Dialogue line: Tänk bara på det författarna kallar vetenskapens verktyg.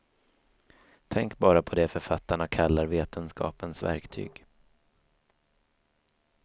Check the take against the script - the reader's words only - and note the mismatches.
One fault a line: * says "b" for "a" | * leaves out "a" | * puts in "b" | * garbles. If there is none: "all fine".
all fine